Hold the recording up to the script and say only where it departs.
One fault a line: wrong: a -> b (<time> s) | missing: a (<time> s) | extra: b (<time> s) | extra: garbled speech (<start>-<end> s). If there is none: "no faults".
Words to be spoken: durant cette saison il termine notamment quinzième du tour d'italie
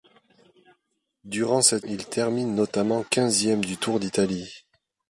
missing: saison (1.9 s)